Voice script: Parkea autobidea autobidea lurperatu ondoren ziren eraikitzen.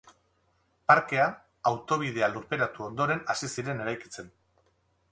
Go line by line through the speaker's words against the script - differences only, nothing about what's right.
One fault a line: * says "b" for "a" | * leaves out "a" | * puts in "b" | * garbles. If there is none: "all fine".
* leaves out "autobidea"
* puts in "hasi"